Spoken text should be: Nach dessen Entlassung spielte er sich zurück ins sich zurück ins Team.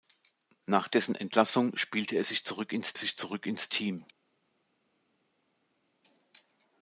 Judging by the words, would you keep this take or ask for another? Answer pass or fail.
pass